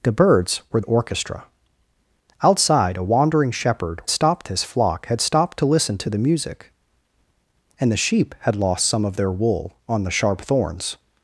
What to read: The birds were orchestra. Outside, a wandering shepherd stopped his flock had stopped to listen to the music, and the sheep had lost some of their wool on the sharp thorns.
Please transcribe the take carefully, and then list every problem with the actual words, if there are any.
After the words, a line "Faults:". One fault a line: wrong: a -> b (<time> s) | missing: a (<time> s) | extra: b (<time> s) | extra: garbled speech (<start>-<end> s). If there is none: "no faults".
The birds were orchestra. Outside, a wandering shepherd stopped his flock had stopped to listen to the music, and the sheep had lost some of their wool on the sharp thorns.
Faults:
no faults